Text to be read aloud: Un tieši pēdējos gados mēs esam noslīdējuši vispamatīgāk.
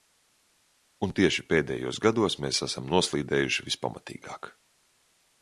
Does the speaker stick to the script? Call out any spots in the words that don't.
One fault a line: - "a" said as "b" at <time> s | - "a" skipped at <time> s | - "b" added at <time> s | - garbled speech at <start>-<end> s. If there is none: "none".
none